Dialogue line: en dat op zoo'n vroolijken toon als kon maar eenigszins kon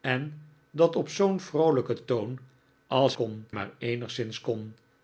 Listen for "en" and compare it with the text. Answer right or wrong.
right